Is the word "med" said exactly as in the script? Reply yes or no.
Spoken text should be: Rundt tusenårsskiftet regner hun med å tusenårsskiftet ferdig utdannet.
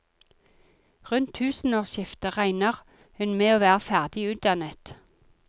yes